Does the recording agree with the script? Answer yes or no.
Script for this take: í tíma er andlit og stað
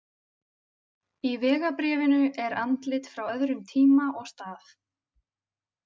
no